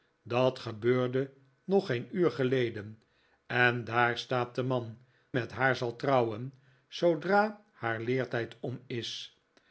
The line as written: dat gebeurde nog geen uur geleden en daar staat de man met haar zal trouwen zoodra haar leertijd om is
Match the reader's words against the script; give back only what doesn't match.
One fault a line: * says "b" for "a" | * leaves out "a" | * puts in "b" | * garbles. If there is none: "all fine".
all fine